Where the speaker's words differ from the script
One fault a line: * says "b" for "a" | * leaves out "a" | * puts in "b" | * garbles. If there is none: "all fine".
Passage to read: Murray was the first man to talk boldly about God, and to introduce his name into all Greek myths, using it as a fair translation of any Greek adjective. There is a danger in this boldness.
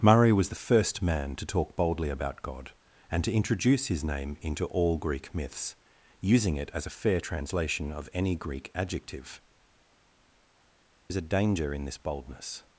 * leaves out "There"